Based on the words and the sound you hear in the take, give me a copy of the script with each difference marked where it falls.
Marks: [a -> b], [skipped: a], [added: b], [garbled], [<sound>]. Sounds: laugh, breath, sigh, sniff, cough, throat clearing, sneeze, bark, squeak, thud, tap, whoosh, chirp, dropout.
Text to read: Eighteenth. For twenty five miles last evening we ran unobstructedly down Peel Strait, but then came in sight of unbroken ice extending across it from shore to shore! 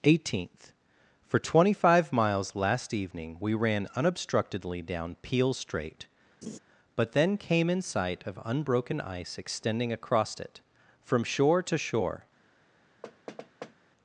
Eighteenth. For twenty five miles last evening we ran unobstructedly down Peel Strait, [laugh] but then came in sight of unbroken ice extending across it from shore to shore! [thud]